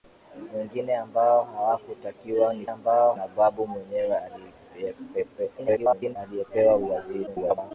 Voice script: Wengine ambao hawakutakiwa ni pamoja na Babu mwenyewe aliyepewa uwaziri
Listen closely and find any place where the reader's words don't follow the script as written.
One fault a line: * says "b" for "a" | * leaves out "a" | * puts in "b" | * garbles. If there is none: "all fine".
* says "ambao" for "pamoja"
* garbles
* garbles